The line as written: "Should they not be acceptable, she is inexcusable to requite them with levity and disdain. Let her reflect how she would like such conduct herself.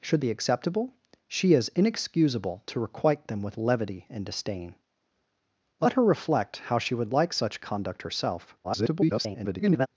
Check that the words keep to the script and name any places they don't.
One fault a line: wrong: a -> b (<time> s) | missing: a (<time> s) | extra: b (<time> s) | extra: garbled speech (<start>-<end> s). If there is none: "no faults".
missing: they not (0.2 s)
extra: garbled speech (8.6-9.9 s)